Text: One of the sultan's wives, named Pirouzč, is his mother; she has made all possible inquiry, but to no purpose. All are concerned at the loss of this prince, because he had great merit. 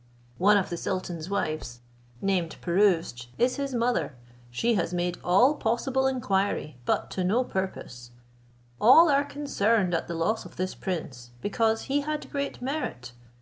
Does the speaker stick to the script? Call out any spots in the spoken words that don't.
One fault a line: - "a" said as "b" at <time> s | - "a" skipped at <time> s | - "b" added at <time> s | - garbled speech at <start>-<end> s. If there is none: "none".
none